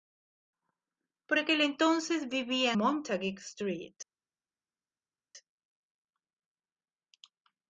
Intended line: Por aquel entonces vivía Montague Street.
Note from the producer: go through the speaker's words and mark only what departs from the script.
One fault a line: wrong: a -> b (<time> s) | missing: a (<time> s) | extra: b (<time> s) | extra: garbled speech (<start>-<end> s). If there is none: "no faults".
no faults